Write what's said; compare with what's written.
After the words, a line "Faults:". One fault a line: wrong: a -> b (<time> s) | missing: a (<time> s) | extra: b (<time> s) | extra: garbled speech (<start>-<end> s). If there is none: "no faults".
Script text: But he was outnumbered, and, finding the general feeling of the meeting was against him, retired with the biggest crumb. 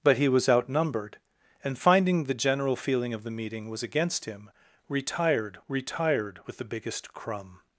But he was outnumbered, and, finding the general feeling of the meeting was against him, retired retired with the biggest crumb.
Faults:
extra: retired (5.7 s)